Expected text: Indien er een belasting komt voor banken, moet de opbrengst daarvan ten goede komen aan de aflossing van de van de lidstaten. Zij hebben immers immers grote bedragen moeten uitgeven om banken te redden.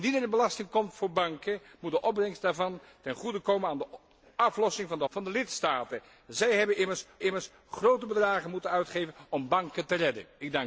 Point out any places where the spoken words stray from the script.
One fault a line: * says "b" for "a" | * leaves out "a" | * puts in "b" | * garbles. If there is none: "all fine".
all fine